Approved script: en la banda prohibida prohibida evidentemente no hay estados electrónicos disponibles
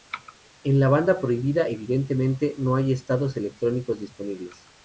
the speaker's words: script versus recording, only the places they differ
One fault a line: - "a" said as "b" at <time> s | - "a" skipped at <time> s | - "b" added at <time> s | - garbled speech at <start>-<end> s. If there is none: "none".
- "prohibida" skipped at 1.7 s